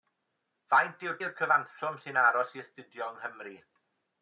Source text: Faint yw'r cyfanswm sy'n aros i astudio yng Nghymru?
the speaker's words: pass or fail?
fail